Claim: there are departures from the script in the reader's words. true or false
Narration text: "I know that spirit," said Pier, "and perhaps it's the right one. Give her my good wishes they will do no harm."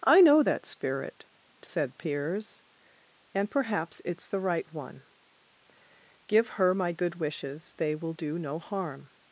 true